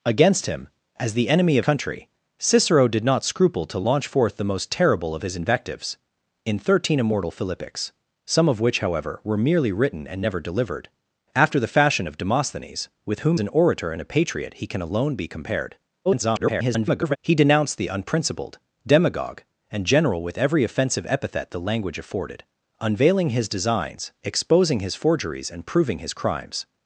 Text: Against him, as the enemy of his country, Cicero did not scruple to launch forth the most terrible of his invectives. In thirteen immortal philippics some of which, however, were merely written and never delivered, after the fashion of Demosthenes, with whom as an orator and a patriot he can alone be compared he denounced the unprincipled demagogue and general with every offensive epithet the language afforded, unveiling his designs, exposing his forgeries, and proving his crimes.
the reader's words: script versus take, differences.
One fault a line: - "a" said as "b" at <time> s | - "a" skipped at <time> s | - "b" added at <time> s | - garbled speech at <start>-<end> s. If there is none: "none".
- "his" skipped at 1.6 s
- "as" skipped at 13.4 s
- garbled speech at 16.0-17.2 s